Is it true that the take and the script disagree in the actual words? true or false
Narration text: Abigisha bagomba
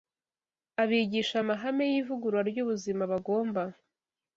true